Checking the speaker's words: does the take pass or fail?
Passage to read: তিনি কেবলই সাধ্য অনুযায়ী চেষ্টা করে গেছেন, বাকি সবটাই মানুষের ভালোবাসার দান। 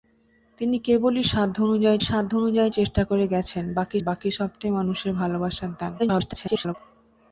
fail